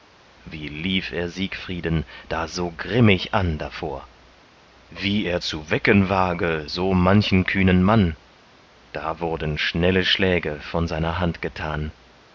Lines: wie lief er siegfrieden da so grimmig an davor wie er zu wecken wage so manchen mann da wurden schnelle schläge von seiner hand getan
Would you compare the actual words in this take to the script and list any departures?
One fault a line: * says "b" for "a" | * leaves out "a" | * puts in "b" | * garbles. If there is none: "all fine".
* puts in "kühnen"